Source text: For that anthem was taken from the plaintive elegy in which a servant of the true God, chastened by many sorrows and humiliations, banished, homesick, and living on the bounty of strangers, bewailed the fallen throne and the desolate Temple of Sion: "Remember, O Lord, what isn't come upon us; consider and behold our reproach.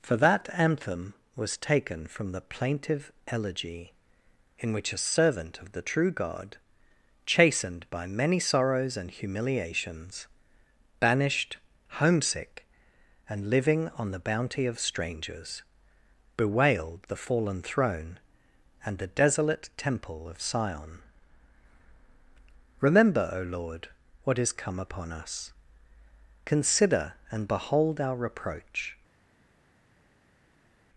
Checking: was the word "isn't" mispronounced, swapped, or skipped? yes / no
yes